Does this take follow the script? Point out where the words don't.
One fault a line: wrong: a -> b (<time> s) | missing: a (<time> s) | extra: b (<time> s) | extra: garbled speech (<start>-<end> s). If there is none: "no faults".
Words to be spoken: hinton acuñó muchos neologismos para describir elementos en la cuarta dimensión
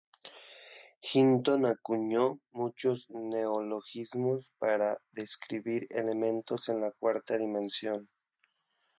no faults